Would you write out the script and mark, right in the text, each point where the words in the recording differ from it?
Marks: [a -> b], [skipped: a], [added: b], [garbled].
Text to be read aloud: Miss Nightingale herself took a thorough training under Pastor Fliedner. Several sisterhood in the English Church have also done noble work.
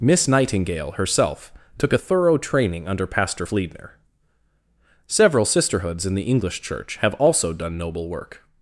Miss Nightingale herself took a thorough training under Pastor Fliedner. Several [sisterhood -> sisterhoods] in the English Church have also done noble work.